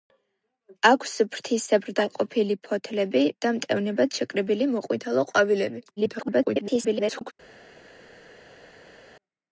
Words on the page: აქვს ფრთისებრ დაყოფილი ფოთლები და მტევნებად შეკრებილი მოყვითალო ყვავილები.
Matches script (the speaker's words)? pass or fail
fail